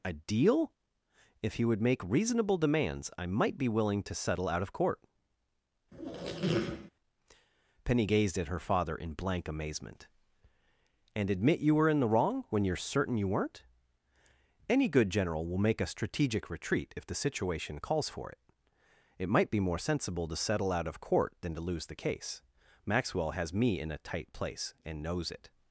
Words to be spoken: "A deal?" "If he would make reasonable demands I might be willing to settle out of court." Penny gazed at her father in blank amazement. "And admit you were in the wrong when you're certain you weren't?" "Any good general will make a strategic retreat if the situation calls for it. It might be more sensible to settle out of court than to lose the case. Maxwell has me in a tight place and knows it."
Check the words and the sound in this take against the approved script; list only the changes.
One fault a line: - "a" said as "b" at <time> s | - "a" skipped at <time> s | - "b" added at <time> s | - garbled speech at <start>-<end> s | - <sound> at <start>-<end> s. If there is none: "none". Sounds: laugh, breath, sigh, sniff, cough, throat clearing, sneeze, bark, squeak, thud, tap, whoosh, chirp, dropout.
- squeak at 5.9-6.9 s